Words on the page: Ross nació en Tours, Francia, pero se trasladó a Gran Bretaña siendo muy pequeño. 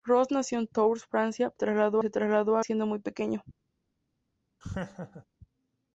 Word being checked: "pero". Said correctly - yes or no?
no